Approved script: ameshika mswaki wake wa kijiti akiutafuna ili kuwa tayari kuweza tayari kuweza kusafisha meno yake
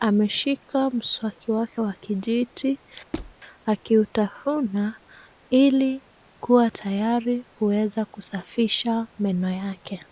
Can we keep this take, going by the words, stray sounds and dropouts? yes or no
no